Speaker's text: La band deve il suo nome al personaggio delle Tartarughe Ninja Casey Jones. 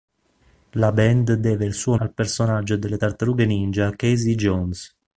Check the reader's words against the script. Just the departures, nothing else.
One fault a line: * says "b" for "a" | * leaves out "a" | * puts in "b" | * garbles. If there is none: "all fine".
* leaves out "nome"